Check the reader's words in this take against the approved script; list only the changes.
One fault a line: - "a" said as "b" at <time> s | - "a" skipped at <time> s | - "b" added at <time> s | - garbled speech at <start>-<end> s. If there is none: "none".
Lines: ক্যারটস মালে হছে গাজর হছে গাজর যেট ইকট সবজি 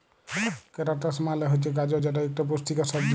- "হছে গাজর" skipped at 2.0 s
- "পুষ্টিকর" added at 2.5 s